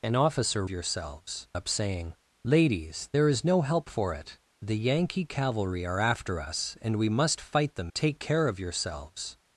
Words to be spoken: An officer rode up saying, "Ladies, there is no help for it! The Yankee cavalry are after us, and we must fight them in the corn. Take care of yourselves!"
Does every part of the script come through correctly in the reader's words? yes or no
no